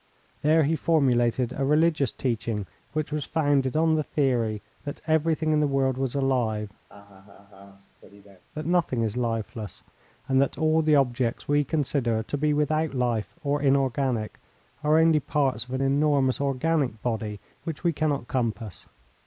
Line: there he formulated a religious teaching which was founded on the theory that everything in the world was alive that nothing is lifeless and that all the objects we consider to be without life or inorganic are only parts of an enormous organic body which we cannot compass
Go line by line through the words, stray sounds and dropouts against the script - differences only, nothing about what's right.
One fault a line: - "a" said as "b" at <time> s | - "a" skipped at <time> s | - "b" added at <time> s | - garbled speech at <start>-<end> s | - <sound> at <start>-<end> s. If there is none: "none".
- laugh at 6.9-8.4 s